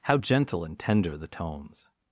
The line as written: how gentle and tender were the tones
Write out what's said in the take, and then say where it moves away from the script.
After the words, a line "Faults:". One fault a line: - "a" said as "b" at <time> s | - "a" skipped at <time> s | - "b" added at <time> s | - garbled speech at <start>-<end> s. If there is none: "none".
how gentle and tender the tones
Faults:
- "were" skipped at 1.2 s